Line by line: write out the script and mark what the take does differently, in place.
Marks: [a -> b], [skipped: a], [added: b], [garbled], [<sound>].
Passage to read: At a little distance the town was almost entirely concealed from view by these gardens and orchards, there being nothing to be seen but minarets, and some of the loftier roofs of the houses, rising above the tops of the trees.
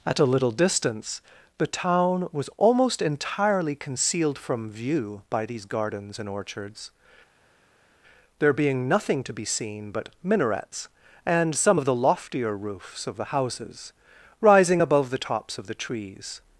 At a little distance the town was almost entirely concealed from view by these gardens and orchards, there being nothing to be seen but minarets, and some of the loftier roofs of the houses, rising above the tops of the trees.